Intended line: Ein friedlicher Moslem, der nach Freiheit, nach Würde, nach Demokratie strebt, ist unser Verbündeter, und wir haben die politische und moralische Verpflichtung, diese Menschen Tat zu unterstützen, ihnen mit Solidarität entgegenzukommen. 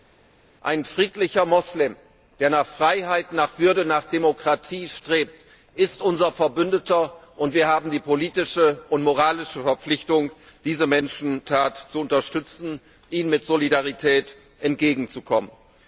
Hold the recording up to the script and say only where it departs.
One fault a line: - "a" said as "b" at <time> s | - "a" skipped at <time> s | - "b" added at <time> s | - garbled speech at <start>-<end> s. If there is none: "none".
none